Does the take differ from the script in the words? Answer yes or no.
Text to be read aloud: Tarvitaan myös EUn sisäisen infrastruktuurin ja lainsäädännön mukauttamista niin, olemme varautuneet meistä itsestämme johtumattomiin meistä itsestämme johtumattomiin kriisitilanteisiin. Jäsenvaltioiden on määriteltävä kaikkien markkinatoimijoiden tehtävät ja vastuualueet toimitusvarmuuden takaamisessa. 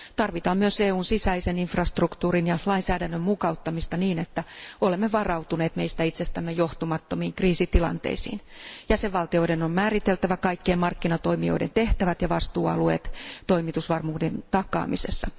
yes